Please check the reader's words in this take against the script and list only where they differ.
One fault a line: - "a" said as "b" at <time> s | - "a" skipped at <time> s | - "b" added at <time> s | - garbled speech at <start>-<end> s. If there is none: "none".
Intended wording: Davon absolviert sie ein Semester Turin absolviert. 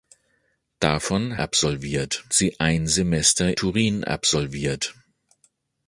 none